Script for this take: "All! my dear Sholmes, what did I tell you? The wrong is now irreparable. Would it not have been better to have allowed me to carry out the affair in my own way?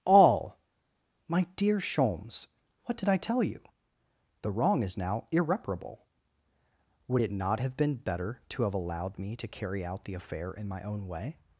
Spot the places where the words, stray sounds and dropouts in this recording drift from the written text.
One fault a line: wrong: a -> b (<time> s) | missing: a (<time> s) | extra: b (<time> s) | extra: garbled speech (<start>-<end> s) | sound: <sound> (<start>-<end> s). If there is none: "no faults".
no faults